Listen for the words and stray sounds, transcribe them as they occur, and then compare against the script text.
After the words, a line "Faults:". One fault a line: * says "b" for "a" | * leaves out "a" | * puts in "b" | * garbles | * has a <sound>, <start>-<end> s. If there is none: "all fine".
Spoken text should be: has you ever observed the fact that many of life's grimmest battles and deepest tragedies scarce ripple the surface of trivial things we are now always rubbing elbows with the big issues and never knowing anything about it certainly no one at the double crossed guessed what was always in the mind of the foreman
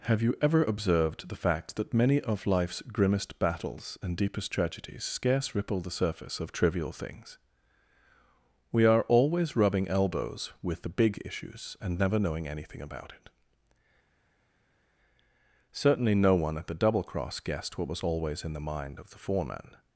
have you ever observed the fact that many of life's grimmest battles and deepest tragedies scarce ripple the surface of trivial things we are always rubbing elbows with the big issues and never knowing anything about it certainly no one at the double cross guessed what was always in the mind of the foreman
Faults:
* says "have" for "has"
* leaves out "now"
* says "cross" for "crossed"